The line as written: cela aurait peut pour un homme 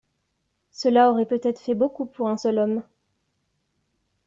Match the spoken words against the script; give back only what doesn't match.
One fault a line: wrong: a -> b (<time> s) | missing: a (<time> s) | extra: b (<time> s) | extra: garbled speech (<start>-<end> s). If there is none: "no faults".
extra: être fait beaucoup (1.4 s)
extra: seul (2.3 s)